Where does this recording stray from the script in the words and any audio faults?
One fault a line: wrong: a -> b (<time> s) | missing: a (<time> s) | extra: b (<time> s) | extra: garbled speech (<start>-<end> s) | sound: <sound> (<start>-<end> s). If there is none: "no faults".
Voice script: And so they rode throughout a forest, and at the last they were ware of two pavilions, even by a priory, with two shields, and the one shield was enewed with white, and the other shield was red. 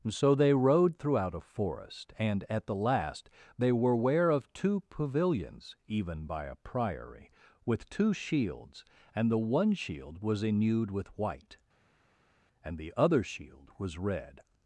missing: And (0.1 s)